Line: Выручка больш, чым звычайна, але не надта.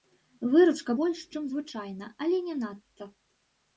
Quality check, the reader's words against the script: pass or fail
pass